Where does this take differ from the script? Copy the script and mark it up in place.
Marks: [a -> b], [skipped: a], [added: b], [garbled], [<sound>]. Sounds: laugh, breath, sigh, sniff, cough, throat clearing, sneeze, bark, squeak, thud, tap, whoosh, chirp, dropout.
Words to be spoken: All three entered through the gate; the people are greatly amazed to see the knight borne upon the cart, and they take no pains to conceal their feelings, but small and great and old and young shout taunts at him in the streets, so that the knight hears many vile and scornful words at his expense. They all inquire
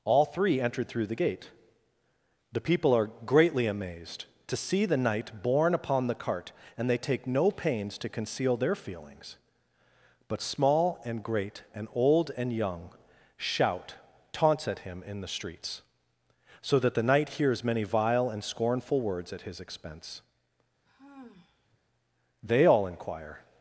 All three entered through the gate; the people are greatly amazed to see the knight borne upon the cart, and they take no pains to conceal their feelings, but small and great and old and young shout taunts at him in the streets, so that the knight hears many vile and scornful words at his expense. [sigh] They all inquire